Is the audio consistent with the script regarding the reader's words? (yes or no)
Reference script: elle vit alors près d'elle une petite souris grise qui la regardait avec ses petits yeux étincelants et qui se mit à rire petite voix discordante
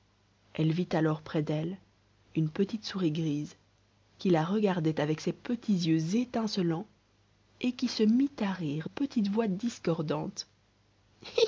yes